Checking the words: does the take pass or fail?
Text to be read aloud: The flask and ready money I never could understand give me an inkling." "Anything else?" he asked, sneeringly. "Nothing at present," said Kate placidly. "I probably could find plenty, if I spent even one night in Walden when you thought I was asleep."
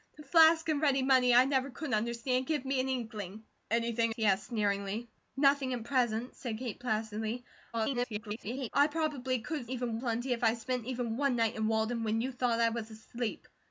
fail